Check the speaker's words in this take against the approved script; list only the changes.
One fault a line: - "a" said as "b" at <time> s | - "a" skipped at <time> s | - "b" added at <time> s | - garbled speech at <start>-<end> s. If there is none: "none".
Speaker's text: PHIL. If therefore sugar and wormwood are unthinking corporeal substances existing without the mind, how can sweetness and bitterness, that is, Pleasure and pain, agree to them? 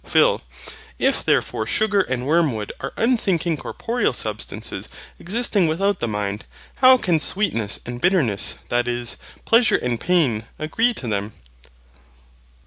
none